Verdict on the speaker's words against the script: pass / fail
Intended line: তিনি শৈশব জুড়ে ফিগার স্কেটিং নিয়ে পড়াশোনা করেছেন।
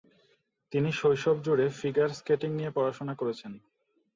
pass